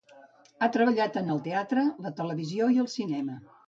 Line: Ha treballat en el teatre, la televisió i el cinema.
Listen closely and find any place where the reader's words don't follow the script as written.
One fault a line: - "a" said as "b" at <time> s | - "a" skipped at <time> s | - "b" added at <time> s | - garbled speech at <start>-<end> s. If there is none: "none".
none